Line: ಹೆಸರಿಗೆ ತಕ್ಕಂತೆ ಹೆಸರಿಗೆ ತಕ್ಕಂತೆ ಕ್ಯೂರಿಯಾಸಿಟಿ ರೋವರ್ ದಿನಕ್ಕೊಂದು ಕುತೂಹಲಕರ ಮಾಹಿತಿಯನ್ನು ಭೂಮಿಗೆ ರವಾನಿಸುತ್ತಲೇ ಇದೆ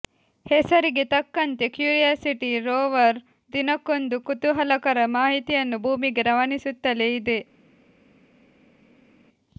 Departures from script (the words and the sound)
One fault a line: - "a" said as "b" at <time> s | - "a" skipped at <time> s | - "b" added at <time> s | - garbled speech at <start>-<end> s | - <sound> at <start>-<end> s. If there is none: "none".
- "ಹೆಸರಿಗೆ ತಕ್ಕಂತೆ" skipped at 1.6 s